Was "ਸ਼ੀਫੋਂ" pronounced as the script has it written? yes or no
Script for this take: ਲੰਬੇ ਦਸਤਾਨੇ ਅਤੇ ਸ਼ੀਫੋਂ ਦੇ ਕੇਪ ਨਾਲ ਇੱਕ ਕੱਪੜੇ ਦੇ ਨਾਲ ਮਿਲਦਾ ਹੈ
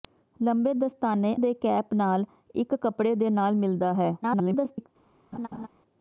no